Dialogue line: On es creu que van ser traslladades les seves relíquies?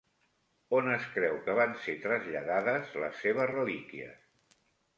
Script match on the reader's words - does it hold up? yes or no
yes